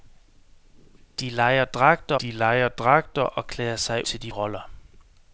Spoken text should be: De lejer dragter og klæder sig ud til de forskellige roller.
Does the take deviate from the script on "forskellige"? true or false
true